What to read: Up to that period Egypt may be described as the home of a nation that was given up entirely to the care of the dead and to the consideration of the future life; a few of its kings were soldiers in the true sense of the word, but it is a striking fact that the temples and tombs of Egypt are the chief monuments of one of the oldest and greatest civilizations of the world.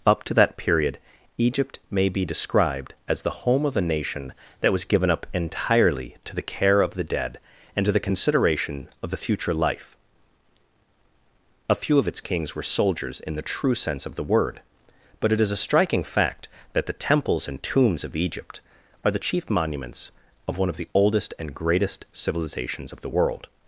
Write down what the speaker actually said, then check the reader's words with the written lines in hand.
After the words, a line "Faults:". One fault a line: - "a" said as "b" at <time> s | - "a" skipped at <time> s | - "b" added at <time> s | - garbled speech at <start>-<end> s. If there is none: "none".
Up to that period Egypt may be described as the home of a nation that was given up entirely to the care of the dead and to the consideration of the future life; a few of its kings were soldiers in the true sense of the word, but it is a striking fact that the temples and tombs of Egypt are the chief monuments of one of the oldest and greatest civilizations of the world.
Faults:
none